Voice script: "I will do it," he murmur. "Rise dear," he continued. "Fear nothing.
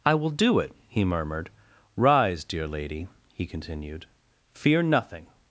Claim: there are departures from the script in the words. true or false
true